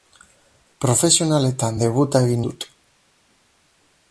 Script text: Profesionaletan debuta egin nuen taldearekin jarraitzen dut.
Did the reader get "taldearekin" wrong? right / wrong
wrong